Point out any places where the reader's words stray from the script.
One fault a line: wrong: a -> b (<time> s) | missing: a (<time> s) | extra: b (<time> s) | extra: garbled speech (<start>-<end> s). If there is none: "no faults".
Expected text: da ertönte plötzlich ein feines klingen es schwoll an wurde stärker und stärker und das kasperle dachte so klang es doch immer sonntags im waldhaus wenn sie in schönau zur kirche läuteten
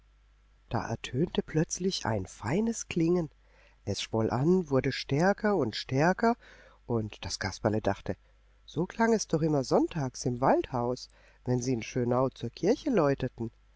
no faults